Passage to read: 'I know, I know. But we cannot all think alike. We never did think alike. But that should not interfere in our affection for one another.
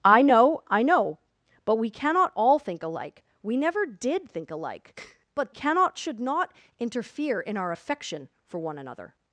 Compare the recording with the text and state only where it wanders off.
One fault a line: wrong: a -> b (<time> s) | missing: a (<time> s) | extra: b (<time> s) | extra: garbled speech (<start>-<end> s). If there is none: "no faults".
wrong: that -> cannot (5.5 s)